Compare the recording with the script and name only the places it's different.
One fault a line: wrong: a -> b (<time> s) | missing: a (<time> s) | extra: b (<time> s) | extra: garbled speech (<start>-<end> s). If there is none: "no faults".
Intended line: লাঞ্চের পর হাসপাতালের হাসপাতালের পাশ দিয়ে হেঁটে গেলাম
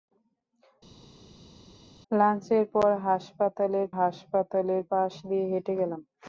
no faults